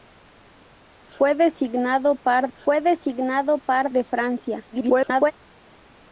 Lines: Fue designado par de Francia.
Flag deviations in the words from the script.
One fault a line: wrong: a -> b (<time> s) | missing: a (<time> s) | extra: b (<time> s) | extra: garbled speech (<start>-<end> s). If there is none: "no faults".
extra: fue designado par (2.5 s)
extra: garbled speech (4.7-5.3 s)